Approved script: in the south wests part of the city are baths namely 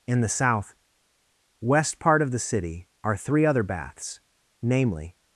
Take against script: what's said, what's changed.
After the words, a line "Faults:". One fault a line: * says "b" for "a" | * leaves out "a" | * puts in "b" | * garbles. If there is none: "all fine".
in the south west part of the city are three other baths namely
Faults:
* says "west" for "wests"
* puts in "three other"